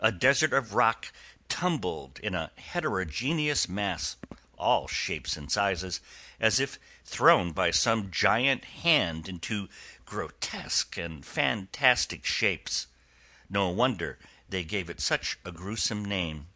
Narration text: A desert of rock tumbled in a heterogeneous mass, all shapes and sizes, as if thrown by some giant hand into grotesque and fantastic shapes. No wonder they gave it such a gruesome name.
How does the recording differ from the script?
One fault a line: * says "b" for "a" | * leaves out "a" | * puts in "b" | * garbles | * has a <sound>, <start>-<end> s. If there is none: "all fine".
all fine